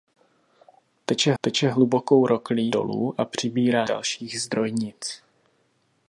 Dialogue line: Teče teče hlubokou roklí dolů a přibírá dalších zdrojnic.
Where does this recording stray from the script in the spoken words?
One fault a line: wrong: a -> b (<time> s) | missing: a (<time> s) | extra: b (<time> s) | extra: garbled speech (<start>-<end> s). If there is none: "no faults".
no faults